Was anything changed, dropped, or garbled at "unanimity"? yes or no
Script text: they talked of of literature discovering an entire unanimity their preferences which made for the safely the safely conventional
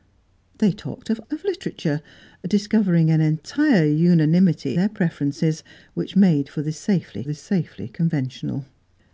no